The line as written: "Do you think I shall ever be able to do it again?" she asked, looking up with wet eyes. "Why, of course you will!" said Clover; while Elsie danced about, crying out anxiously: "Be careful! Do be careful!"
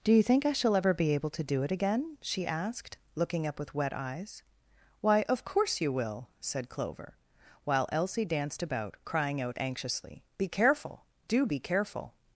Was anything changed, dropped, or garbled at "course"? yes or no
no